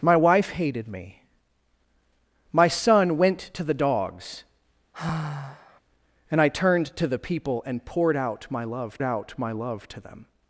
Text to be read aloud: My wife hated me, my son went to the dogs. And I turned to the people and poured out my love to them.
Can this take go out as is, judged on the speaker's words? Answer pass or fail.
fail